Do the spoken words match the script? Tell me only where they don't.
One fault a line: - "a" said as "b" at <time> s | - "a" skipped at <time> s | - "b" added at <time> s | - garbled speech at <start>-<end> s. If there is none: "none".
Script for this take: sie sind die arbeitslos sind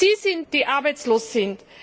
none